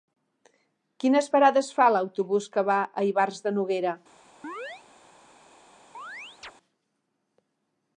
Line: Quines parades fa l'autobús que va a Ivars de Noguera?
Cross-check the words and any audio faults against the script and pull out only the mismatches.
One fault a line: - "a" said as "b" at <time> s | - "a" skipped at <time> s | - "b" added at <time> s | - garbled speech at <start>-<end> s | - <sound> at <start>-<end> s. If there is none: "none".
- chirp at 4.4-4.8 s
- chirp at 5.9-6.5 s